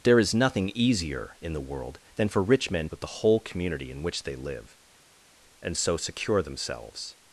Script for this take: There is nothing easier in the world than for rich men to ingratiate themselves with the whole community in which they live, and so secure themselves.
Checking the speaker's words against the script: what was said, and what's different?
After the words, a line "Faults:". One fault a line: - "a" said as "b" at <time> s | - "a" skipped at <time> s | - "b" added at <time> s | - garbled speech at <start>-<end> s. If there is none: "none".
There is nothing easier in the world than for rich men with the whole community in which they live, and so secure themselves.
Faults:
- "to ingratiate themselves" skipped at 2.9 s